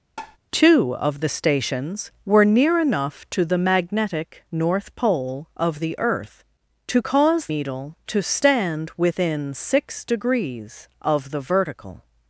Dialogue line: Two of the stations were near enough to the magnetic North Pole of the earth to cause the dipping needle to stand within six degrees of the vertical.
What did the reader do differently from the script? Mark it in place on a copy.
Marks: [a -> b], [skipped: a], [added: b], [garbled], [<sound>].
[tap] Two of the stations were near enough to the magnetic North Pole of the earth to cause [skipped: the dipping] needle to stand within six degrees of the vertical.